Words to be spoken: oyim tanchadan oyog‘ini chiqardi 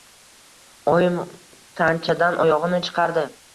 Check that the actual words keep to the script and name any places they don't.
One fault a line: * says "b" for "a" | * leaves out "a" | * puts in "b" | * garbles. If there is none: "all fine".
all fine